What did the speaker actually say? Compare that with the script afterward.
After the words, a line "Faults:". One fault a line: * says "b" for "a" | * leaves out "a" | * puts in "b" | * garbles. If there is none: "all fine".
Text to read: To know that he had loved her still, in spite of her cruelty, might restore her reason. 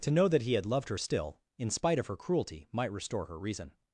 To know that he had loved her still, in spite of her cruelty, might restore her reason.
Faults:
all fine